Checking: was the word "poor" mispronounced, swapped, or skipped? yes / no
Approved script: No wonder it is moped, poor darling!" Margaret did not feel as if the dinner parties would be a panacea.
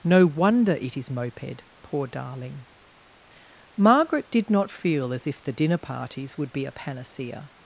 no